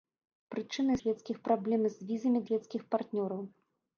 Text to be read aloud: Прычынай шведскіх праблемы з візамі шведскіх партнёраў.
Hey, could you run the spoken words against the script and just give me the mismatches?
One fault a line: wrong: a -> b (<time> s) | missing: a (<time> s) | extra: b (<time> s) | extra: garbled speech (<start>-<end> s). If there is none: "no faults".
no faults